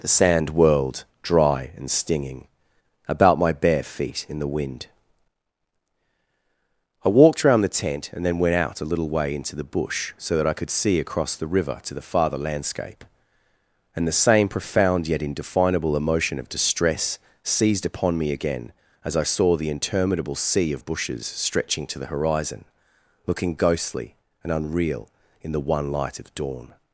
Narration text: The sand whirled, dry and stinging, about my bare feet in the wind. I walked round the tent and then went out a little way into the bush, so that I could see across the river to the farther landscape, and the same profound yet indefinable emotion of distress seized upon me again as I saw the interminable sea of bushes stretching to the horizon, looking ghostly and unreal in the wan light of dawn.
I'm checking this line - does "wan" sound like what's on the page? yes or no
no